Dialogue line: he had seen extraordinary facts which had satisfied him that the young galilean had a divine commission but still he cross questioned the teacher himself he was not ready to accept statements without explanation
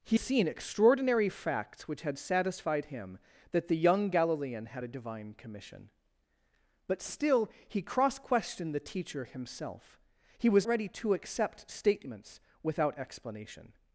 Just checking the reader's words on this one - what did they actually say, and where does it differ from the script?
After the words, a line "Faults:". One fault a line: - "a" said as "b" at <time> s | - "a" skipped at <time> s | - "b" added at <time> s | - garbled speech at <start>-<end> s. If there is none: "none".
he seen extraordinary facts which had satisfied him that the young galilean had a divine commission but still he cross questioned the teacher himself he was ready to accept statements without explanation
Faults:
- "had" skipped at 0.2 s
- "not" skipped at 10.7 s